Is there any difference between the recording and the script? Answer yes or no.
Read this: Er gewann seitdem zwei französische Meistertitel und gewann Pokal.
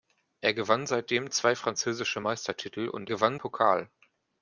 no